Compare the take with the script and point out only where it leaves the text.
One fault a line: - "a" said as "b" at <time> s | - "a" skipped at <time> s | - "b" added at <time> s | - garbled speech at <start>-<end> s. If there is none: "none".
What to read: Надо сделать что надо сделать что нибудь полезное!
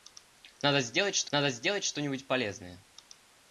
none